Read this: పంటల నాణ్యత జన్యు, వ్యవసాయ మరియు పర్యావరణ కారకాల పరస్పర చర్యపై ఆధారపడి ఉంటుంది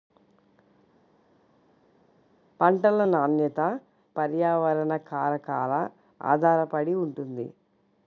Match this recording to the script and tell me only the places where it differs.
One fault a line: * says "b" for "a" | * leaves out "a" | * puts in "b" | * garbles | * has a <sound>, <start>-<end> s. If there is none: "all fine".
* leaves out "జన్యు వ్యవసాయ మరియు"
* leaves out "పరస్పర చర్యపై"